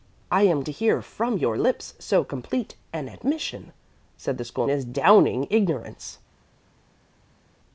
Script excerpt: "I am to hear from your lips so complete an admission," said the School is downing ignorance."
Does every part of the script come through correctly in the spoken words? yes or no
yes